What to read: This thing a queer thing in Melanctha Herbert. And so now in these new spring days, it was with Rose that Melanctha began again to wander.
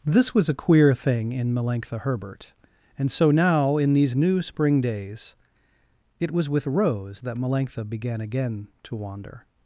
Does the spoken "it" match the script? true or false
true